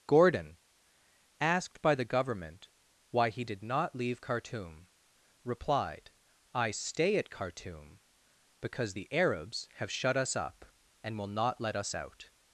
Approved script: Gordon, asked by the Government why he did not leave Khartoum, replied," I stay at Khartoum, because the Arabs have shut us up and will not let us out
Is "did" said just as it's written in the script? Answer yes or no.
yes